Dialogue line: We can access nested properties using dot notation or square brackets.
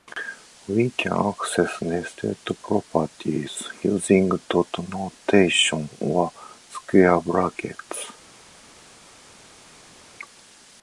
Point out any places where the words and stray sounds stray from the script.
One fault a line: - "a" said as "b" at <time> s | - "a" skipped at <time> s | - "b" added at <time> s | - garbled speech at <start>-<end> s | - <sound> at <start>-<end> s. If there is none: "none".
none